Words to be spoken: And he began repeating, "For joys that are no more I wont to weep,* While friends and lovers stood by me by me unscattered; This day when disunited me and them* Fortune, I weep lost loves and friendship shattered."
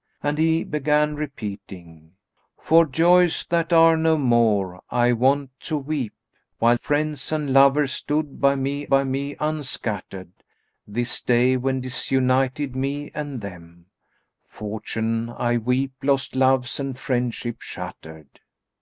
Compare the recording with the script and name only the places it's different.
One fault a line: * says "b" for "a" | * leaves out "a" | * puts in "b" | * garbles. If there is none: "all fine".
all fine